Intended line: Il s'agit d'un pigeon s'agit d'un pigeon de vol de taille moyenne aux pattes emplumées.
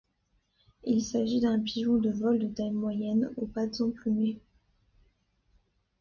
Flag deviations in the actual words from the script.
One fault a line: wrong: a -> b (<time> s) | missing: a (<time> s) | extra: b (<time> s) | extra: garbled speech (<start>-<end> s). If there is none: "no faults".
missing: s'agit d'un pigeon (2.0 s)